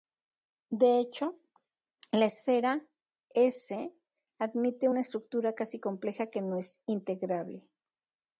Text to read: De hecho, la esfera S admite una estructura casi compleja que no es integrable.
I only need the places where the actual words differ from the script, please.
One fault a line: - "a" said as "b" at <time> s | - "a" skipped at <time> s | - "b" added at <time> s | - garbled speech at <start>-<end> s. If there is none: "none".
none